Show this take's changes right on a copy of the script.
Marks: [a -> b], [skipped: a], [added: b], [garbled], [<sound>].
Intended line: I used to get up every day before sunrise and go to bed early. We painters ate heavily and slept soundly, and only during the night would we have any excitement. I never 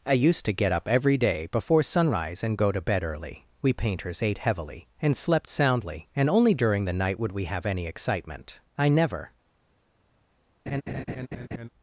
I used to get up every day before sunrise and go to bed early. We painters ate heavily and slept soundly, and only during the night would we have any excitement. I never [laugh]